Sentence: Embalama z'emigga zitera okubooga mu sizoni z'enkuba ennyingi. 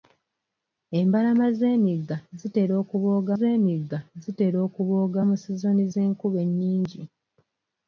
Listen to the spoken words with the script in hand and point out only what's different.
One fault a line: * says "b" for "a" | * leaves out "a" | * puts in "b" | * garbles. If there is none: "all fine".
* puts in "z'emigga zitera okubooga"